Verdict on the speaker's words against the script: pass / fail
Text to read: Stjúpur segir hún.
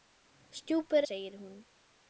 pass